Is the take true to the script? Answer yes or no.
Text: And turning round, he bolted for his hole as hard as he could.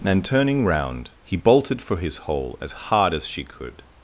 no